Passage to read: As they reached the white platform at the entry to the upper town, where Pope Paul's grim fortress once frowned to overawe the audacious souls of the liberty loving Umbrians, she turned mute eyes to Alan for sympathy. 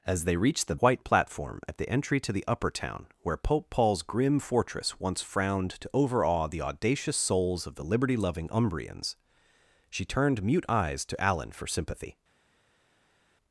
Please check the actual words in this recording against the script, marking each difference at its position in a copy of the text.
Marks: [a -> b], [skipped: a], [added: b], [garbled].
As they reached the white platform at the entry to the upper town, where Pope Paul's grim fortress once frowned to overawe the audacious souls of the liberty loving Umbrians, she turned mute eyes to Alan for sympathy.